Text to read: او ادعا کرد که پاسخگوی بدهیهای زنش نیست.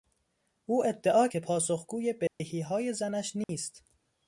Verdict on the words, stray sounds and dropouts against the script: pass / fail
fail